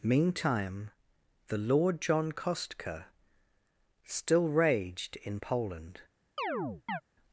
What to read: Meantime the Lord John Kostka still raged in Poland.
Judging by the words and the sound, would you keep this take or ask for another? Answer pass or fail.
fail